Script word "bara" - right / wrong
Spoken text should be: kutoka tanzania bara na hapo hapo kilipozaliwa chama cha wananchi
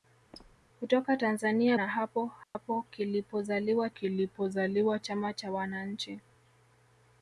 wrong